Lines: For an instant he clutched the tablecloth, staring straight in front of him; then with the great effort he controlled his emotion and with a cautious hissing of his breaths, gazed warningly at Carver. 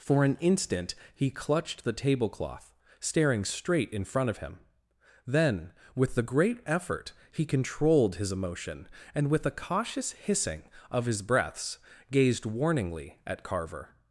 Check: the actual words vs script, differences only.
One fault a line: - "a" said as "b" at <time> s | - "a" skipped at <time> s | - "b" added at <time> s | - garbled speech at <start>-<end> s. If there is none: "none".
none